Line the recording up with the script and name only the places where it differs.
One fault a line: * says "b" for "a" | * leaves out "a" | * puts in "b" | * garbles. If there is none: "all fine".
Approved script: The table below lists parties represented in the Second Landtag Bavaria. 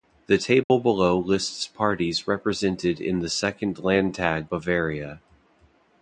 all fine